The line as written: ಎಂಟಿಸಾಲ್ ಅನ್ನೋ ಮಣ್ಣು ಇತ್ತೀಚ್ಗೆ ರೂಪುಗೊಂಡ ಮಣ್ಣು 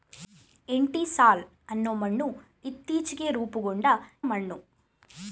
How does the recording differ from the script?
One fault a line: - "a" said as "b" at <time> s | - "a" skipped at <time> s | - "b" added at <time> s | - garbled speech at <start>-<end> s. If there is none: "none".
none